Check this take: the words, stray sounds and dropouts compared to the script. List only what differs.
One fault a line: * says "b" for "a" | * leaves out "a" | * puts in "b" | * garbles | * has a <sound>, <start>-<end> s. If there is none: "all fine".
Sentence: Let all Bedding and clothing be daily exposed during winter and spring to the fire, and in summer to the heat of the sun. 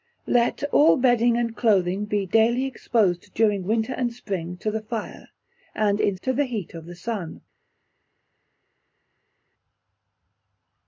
* leaves out "summer"